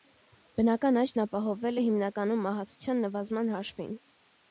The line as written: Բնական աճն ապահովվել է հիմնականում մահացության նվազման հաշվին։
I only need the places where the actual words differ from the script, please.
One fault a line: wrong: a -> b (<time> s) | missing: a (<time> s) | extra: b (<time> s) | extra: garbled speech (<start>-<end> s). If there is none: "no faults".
no faults